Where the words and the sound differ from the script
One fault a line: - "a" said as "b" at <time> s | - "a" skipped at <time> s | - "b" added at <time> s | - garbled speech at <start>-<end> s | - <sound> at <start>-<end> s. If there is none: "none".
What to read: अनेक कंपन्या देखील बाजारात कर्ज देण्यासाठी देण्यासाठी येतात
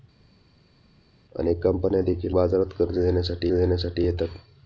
none